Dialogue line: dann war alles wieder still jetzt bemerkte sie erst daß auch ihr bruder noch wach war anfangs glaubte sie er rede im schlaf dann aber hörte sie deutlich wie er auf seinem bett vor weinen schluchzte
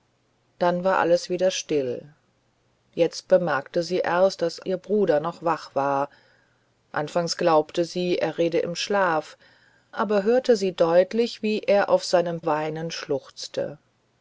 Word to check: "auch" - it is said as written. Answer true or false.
false